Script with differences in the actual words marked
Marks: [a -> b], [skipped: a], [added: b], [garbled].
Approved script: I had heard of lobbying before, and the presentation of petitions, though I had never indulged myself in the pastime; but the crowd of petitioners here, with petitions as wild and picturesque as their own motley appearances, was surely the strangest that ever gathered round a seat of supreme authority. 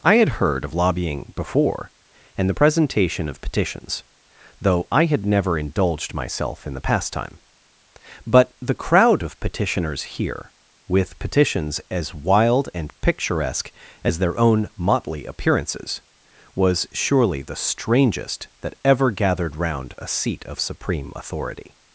I had heard of lobbying before, and the presentation of petitions, though I had never indulged myself in the pastime; but the crowd of petitioners here, with petitions as wild and picturesque as their own motley appearances, was surely the strangest that ever gathered round a seat of supreme authority.